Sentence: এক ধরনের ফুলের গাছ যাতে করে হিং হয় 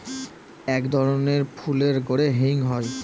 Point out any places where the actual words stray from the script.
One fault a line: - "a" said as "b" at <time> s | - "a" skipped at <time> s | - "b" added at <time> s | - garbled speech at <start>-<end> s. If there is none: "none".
- "গাছ যাতে" skipped at 2.0 s